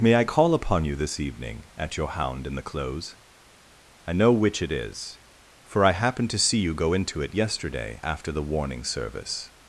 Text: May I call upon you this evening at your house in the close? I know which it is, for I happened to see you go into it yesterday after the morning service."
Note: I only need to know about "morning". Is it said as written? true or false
false